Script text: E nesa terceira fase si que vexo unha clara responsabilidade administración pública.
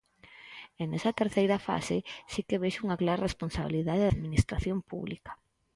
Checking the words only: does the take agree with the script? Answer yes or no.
yes